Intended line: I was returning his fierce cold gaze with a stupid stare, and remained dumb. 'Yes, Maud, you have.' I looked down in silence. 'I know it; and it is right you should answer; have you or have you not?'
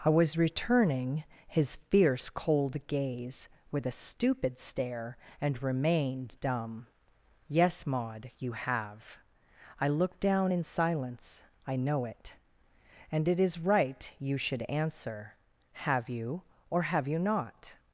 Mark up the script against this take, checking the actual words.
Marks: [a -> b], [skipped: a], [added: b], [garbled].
I was returning his fierce cold gaze with a stupid stare, and remained dumb. 'Yes, Maud, you have.' I looked down in silence. 'I know it; and it is right you should answer; have you or have you not?'